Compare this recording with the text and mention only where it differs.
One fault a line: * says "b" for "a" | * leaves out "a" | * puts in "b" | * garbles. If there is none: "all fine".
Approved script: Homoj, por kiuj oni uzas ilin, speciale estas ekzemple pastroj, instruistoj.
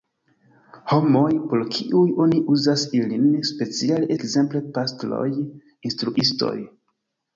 * leaves out "estas"